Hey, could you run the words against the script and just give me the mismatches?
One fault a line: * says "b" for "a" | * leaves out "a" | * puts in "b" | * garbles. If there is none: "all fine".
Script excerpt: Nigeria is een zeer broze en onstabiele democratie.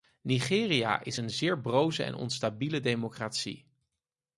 all fine